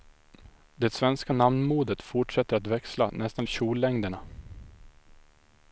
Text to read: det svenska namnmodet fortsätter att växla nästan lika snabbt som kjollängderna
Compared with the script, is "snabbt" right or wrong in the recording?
wrong